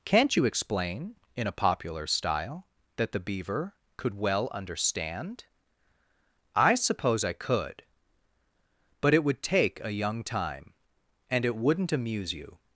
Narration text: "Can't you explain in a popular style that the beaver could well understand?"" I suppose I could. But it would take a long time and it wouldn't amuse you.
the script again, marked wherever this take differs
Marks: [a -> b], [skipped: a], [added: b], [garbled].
"Can't you explain in a popular style that the beaver could well understand?"" I suppose I could. But it would take a [long -> young] time and it wouldn't amuse you.